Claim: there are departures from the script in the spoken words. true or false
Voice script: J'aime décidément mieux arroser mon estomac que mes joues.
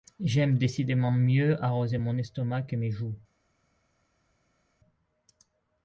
false